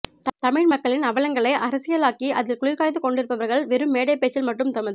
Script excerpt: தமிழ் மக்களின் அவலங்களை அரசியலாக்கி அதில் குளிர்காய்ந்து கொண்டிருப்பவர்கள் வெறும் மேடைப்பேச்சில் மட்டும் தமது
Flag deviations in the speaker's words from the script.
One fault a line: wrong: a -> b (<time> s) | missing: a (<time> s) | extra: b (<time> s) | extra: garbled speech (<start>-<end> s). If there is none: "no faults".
no faults